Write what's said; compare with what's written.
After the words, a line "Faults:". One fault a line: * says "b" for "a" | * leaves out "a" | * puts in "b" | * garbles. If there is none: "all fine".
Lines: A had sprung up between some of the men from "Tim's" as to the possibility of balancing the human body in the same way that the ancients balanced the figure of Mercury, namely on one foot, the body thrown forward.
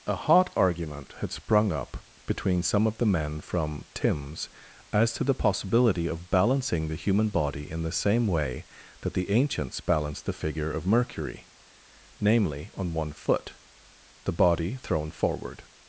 A hot argument had sprung up between some of the men from "Tim's" as to the possibility of balancing the human body in the same way that the ancients balanced the figure of Mercury, namely on one foot, the body thrown forward.
Faults:
* puts in "hot argument"